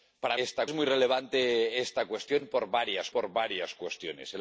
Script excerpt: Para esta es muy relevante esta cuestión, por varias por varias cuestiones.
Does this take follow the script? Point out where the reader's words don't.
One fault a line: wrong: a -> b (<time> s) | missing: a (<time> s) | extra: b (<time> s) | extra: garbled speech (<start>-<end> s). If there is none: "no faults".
no faults